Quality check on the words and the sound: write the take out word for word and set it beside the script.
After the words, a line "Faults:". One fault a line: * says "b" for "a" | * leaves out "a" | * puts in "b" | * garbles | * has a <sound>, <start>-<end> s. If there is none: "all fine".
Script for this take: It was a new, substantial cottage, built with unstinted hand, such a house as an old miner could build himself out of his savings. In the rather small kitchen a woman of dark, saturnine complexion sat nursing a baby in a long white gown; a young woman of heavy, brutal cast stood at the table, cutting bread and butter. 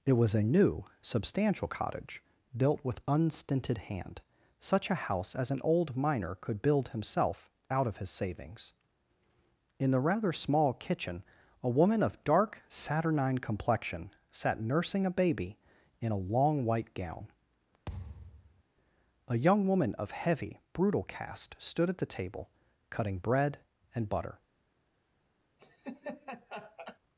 It was a new, substantial cottage, built with unstinted hand, such a house as an old miner could build himself out of his savings. In the rather small kitchen a woman of dark, saturnine complexion sat nursing a baby in a long white gown; a young woman of heavy, brutal cast stood at the table, cutting bread and butter.
Faults:
* has a thud, 17.9-18.6 s
* has a laugh, 25.6-27.0 s